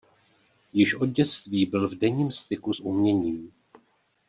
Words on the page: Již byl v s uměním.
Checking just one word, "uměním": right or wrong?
right